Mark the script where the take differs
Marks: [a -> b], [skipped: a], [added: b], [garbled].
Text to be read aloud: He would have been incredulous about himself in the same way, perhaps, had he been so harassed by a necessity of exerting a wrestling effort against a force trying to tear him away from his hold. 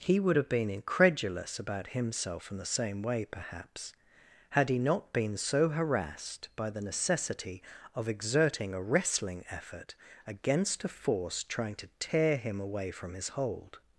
He would have been incredulous about himself in the same way, perhaps, had he [added: not] been so harassed by [a -> the] necessity of exerting a wrestling effort against a force trying to tear him away from his hold.